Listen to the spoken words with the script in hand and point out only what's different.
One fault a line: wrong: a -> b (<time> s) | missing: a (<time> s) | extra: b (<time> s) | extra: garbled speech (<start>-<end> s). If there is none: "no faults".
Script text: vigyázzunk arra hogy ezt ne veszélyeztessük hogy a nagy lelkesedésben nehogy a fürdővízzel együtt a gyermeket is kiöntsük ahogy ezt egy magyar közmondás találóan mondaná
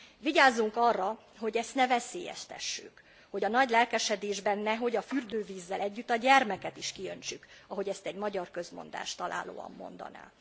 no faults